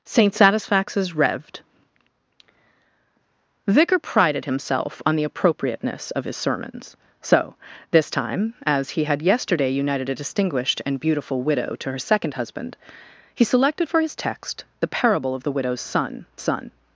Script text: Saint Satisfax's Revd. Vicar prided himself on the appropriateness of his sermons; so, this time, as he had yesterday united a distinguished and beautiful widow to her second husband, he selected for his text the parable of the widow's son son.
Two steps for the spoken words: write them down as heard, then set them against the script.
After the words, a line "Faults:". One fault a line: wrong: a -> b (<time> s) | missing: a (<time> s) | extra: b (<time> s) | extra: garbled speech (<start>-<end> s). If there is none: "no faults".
Saint Satisfax's Revd. Vicar prided himself on the appropriateness of his sermons; so, this time, as he had yesterday united a distinguished and beautiful widow to her second husband, he selected for his text the parable of the widow's son son.
Faults:
no faults